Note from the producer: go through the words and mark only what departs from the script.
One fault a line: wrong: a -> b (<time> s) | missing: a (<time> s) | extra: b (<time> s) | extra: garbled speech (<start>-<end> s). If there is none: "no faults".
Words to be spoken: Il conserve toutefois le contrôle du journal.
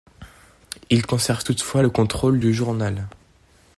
no faults